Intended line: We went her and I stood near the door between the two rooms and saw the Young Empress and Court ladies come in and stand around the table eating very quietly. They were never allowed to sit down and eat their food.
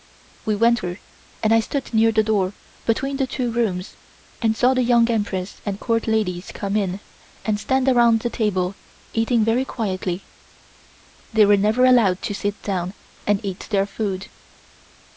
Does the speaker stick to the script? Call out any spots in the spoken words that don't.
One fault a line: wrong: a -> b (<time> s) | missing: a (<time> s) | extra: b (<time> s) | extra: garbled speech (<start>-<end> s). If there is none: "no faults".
no faults